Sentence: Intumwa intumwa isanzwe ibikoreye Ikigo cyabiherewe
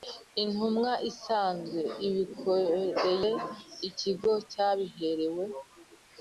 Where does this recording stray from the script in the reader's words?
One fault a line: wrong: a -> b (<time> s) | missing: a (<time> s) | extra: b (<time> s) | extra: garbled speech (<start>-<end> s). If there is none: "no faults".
missing: intumwa (0.9 s)